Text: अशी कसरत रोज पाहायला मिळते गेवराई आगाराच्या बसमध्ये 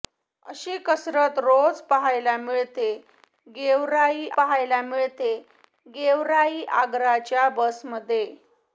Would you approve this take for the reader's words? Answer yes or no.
no